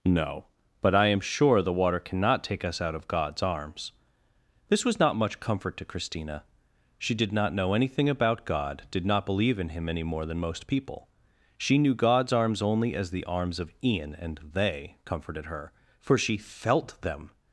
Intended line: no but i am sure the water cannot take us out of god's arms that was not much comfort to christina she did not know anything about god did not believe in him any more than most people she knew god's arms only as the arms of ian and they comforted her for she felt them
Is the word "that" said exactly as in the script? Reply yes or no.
no